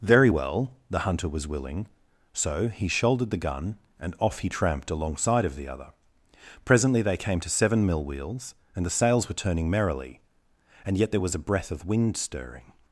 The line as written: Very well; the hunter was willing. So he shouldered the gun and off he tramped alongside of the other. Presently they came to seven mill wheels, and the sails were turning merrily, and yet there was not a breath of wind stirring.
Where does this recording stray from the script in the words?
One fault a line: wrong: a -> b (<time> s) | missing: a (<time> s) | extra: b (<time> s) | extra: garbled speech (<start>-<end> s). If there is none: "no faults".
missing: not (11.3 s)